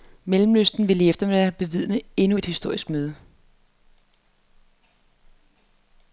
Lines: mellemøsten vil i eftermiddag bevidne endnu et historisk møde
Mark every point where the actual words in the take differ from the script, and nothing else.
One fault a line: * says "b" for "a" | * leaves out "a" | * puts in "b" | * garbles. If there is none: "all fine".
all fine